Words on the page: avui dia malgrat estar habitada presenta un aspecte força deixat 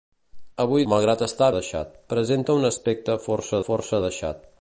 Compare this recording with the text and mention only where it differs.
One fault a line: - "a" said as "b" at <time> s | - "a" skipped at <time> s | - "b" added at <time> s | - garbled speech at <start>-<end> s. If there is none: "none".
- "dia" skipped at 0.8 s
- "habitada" said as "deixat" at 1.6 s
- "força" added at 3.7 s